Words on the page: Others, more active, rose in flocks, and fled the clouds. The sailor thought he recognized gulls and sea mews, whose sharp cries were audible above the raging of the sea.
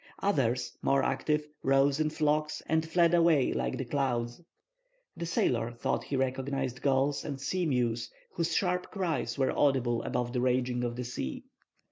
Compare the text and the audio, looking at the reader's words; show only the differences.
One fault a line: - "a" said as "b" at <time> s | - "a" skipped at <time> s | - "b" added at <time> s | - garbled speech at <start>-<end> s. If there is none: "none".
- "away like" added at 3.1 s